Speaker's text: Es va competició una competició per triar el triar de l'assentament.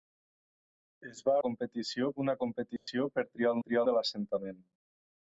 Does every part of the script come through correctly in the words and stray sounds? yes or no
no